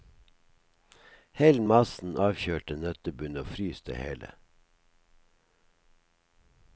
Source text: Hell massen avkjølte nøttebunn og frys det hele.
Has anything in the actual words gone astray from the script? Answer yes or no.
no